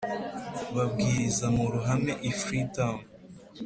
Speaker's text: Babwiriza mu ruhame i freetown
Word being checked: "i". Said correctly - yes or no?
yes